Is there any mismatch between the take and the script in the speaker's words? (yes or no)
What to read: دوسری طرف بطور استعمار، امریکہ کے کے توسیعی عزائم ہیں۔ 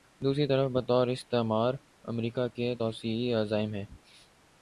yes